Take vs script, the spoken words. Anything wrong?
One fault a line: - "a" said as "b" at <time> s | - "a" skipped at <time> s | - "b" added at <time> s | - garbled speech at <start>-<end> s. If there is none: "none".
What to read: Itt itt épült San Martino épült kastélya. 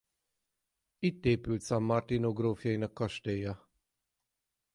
- "itt" skipped at 1.2 s
- "épült" said as "grófjainak" at 2.3 s